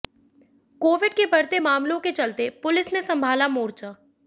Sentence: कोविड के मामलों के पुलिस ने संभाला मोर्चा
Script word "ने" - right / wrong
right